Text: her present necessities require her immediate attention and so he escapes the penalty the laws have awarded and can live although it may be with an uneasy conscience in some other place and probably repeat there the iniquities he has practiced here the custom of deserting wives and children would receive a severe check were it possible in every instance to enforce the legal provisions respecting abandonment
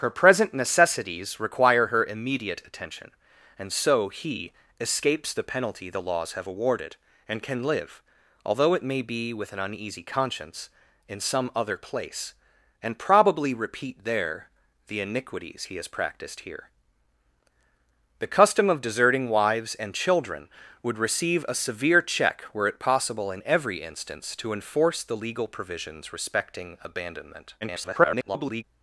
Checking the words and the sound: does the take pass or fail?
fail